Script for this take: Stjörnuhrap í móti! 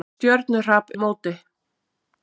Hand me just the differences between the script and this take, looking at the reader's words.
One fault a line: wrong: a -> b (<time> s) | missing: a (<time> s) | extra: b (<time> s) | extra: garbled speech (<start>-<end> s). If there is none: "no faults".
no faults